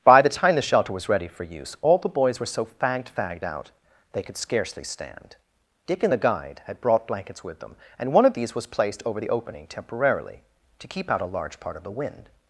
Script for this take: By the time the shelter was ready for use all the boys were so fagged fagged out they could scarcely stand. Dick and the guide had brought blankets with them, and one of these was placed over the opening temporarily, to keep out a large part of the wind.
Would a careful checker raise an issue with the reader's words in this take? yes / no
no